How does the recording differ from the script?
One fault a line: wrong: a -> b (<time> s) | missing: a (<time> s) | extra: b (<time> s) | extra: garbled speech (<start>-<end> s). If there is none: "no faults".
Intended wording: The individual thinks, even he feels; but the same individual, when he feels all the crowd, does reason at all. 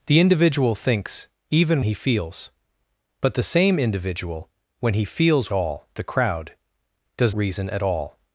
no faults